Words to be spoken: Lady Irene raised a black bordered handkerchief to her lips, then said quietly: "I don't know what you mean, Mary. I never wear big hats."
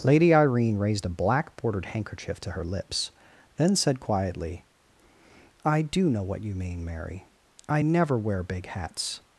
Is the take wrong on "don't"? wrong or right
wrong